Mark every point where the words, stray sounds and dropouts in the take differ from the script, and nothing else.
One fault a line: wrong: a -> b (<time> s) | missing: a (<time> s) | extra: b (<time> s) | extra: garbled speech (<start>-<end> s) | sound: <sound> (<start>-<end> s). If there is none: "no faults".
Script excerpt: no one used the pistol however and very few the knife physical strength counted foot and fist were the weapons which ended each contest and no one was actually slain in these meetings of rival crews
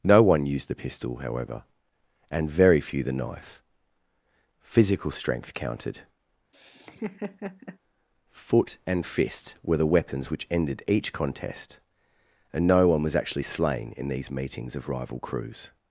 sound: laugh (6.5-7.8 s)